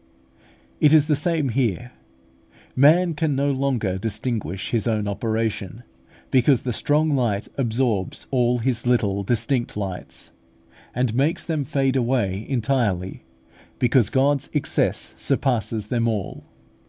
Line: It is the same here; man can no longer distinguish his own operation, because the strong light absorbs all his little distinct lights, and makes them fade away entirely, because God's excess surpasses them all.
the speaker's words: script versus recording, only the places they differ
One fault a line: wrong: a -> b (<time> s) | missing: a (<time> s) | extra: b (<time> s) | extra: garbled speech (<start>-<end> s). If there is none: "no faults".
no faults